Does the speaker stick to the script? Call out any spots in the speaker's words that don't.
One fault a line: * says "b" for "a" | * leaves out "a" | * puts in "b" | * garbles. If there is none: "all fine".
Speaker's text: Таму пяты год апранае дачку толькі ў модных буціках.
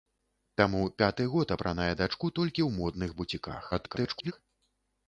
* garbles